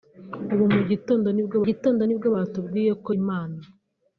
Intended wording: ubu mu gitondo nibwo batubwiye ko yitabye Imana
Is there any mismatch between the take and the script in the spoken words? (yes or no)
yes